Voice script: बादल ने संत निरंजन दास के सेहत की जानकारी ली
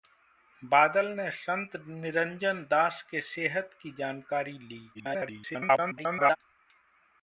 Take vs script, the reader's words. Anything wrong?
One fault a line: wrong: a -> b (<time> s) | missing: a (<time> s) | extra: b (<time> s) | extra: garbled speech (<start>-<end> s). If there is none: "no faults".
extra: garbled speech (4.9-6.4 s)